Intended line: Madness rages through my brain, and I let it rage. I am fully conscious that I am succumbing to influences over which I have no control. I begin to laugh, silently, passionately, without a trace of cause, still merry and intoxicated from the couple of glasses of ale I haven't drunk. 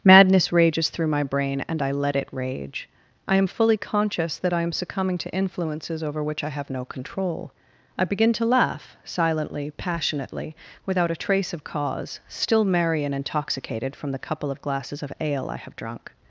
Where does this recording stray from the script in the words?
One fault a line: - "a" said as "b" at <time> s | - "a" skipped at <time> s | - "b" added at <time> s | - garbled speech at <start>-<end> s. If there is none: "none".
- "haven't" said as "have" at 15.6 s